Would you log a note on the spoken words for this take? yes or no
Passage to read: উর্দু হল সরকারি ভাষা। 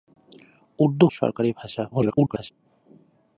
yes